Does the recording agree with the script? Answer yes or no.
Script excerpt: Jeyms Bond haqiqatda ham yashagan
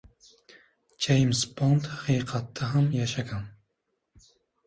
yes